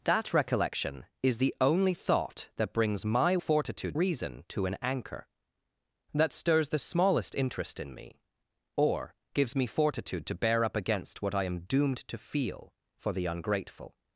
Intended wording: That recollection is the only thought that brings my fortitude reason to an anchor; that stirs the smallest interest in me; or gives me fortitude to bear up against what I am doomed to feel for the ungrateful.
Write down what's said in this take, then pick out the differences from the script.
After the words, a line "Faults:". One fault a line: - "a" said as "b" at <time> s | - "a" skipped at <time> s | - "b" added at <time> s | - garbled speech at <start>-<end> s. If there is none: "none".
That recollection is the only thought that brings my fortitude reason to an anchor; that stirs the smallest interest in me; or gives me fortitude to bear up against what I am doomed to feel for the ungrateful.
Faults:
none